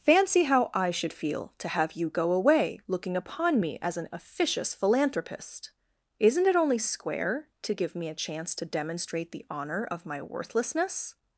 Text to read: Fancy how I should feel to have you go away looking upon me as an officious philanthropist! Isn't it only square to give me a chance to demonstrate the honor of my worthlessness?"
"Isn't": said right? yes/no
yes